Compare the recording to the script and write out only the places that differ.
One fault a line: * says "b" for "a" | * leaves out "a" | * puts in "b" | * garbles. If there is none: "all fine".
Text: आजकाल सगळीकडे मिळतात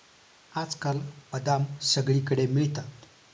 * puts in "बदाम"